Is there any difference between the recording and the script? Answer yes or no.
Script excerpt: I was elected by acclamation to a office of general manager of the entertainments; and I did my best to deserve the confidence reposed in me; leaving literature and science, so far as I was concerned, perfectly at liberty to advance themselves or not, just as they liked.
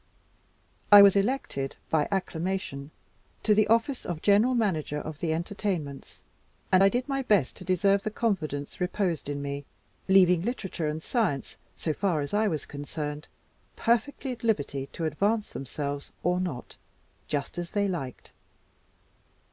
yes